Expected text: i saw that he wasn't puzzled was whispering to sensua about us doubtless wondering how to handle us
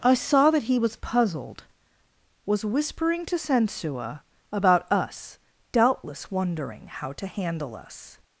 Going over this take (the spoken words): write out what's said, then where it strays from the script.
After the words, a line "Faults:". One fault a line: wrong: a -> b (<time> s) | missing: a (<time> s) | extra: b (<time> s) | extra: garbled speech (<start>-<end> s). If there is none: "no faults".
i saw that he was puzzled was whispering to sensua about us doubtless wondering how to handle us
Faults:
wrong: wasn't -> was (0.8 s)